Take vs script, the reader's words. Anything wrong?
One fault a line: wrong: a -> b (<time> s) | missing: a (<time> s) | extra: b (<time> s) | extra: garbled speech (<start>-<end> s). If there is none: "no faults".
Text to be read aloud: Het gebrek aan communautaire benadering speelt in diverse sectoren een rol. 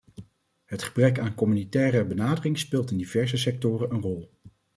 no faults